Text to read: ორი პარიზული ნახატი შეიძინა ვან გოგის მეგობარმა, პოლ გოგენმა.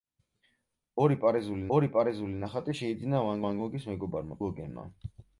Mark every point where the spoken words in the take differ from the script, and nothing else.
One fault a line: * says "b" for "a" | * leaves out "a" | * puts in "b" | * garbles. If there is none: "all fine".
* puts in "ორი პარიზული"
* puts in "ვან"
* leaves out "პოლ"